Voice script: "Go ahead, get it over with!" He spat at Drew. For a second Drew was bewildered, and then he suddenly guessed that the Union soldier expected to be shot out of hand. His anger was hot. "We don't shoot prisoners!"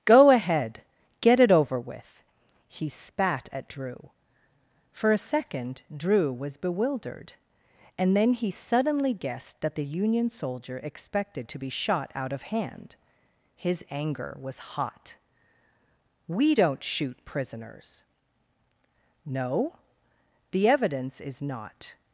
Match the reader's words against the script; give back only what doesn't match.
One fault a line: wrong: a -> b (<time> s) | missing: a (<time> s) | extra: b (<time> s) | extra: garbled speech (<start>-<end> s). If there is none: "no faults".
extra: No The evidence is not (19.3 s)